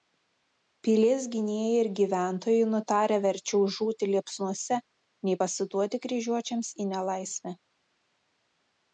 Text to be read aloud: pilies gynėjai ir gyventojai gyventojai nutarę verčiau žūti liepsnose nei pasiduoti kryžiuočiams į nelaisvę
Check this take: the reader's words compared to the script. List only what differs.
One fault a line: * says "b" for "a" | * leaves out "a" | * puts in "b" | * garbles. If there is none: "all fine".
* leaves out "gyventojai"